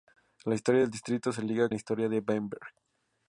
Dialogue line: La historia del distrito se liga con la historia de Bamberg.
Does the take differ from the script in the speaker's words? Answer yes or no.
yes